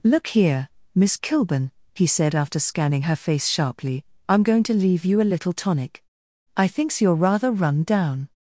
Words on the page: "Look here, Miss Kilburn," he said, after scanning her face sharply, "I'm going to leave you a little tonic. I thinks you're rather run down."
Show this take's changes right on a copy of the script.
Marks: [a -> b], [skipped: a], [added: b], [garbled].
"Look here, Miss Kilburn," he said, after scanning her face sharply, "I'm going to leave you a little tonic. I thinks you're rather run down."